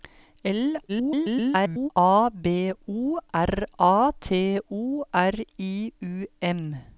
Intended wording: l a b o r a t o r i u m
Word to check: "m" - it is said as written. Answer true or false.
true